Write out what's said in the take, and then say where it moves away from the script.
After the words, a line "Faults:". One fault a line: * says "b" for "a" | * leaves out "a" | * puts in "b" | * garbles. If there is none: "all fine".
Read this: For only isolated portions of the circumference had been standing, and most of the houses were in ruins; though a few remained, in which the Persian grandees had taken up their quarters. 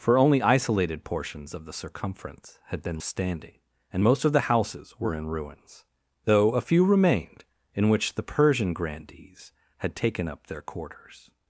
For only isolated portions of the circumference had been standing, and most of the houses were in ruins; though a few remained, in which the Persian grandees had taken up their quarters.
Faults:
all fine